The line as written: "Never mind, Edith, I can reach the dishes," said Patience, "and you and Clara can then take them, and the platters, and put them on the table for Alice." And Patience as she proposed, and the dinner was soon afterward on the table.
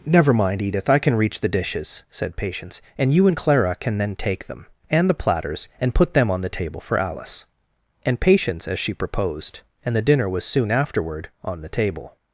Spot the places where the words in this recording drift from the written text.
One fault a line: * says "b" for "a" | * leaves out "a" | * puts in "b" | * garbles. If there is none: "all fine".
all fine